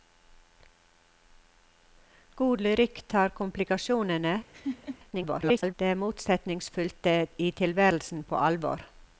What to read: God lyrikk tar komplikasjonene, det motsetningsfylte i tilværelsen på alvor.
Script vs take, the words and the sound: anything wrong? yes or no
yes